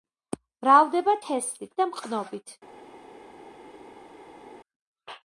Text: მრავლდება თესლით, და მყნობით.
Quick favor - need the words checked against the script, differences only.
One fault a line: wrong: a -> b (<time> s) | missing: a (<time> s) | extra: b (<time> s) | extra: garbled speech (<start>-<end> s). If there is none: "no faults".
no faults